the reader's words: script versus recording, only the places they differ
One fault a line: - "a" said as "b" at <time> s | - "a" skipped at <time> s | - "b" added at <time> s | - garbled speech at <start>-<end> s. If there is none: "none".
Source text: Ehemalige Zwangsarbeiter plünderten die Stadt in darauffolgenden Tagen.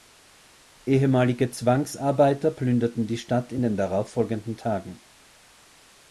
- "den" added at 3.6 s